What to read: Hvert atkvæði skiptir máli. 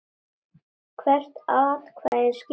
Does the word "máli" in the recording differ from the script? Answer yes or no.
no